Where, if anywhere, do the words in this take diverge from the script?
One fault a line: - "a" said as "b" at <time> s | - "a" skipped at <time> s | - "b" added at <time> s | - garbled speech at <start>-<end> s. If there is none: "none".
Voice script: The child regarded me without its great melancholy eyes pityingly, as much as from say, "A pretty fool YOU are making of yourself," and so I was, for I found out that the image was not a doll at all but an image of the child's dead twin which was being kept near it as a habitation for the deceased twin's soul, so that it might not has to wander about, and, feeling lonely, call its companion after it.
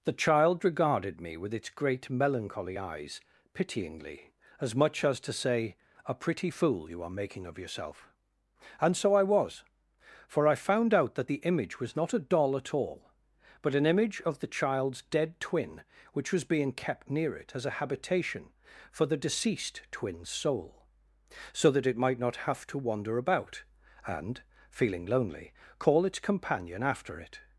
- "without" said as "with" at 1.4 s
- "from" said as "to" at 5.2 s
- "has" said as "have" at 22.5 s